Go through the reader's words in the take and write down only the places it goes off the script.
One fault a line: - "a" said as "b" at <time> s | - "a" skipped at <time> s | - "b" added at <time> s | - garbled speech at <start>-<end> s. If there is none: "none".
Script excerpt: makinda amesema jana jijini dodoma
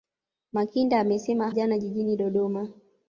none